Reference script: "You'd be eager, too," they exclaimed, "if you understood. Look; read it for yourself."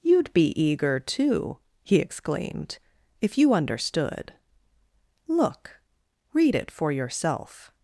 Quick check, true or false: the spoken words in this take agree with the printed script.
false